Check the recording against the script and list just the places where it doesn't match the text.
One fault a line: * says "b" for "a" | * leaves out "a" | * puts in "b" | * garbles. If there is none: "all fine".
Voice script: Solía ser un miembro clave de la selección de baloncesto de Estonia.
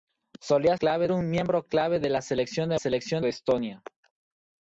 * says "clave" for "ser"
* says "selección" for "baloncesto"